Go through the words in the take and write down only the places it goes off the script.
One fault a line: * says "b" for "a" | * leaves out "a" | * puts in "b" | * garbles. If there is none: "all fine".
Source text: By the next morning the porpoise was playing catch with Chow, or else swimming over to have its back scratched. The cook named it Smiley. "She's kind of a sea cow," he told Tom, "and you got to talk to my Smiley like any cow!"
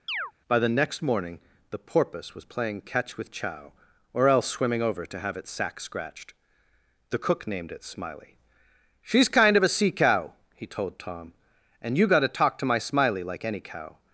* says "sack" for "back"